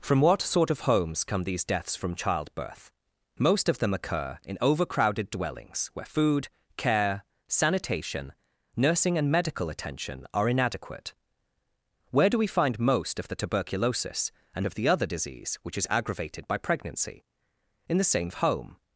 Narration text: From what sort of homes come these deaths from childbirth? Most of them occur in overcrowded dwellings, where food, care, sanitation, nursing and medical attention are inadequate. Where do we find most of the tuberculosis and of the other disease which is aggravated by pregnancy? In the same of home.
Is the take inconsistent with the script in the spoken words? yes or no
no